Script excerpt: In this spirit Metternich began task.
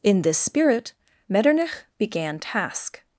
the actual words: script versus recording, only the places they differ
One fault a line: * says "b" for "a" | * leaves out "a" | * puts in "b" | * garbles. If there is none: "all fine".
all fine